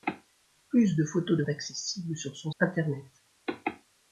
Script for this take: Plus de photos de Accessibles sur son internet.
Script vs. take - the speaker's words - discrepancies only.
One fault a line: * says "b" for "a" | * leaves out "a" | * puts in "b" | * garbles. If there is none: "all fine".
all fine